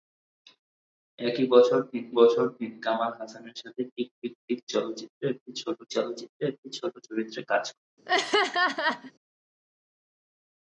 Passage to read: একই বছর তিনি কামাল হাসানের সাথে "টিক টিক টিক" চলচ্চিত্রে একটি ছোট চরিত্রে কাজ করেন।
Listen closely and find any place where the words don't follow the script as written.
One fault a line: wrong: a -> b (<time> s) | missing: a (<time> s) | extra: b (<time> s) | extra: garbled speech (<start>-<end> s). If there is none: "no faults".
extra: বছর তিনি (2.1 s)
extra: চলচ্চিত্রে একটি ছোট (5.9 s)